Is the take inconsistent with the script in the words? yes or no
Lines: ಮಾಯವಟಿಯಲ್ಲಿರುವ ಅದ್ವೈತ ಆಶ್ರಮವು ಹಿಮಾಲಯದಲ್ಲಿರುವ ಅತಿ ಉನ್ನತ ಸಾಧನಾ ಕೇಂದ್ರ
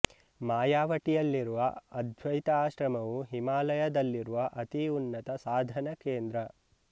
no